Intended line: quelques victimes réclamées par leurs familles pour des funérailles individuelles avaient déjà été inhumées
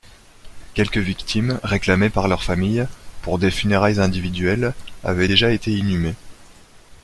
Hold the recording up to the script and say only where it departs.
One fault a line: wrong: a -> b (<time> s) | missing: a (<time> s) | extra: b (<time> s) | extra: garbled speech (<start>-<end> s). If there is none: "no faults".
no faults